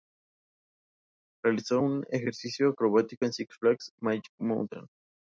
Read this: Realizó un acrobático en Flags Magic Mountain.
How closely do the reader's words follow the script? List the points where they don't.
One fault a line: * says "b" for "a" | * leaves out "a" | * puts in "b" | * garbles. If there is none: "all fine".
* puts in "ejercicio"
* puts in "Six"